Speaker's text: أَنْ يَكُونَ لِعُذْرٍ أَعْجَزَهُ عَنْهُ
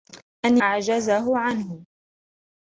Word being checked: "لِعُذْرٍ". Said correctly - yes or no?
no